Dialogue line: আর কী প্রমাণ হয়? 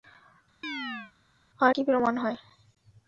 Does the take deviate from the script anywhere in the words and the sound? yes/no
yes